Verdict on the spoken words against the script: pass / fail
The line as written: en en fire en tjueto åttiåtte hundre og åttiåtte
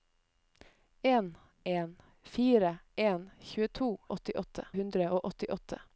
pass